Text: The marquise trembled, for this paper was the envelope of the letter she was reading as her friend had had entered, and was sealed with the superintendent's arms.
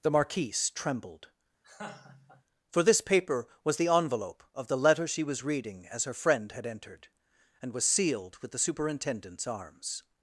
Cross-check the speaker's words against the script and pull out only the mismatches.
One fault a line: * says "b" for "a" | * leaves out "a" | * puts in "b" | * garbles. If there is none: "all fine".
* leaves out "had"